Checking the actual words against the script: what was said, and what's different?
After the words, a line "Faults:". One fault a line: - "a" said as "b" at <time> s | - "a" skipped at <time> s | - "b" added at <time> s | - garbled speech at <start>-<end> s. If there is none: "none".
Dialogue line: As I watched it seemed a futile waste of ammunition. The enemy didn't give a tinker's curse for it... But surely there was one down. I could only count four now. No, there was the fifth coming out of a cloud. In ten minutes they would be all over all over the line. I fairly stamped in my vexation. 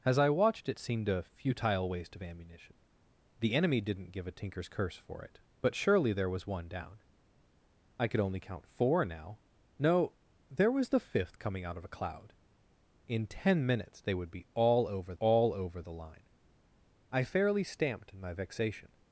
As I watched it seemed a futile waste of ammunition. The enemy didn't give a tinker's curse for it... But surely there was one down. I could only count four now. No, there was the fifth coming out of a cloud. In ten minutes they would be all over all over the line. I fairly stamped in my vexation.
Faults:
none